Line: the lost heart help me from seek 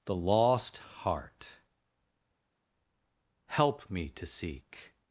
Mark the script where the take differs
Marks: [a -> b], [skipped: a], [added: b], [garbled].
the lost heart help me [from -> to] seek